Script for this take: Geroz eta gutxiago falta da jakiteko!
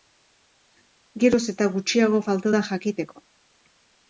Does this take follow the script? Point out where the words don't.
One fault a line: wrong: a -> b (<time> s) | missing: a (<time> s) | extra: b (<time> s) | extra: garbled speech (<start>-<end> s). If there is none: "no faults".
no faults